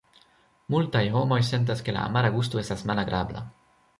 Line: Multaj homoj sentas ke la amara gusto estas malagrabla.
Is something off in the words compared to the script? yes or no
no